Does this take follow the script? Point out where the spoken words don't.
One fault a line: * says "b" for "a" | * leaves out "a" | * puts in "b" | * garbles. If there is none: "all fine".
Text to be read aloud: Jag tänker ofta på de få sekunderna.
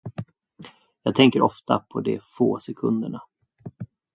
all fine